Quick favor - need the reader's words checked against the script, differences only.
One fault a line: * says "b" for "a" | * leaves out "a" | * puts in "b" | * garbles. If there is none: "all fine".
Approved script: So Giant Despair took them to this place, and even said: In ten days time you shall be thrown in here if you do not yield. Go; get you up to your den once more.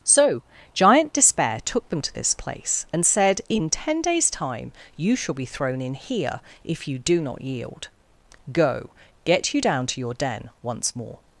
* leaves out "even"
* says "down" for "up"